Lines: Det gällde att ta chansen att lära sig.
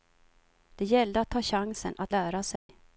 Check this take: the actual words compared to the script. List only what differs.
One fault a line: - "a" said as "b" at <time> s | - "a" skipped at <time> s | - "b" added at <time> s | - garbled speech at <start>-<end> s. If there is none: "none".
none